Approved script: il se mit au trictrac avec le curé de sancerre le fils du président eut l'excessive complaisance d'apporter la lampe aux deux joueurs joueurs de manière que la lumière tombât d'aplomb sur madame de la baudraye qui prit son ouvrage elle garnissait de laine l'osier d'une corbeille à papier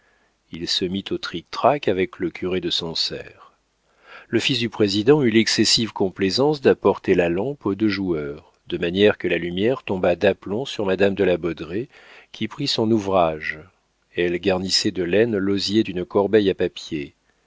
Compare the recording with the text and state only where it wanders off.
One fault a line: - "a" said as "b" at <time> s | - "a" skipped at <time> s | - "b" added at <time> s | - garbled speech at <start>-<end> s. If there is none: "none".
- "joueurs" skipped at 8.5 s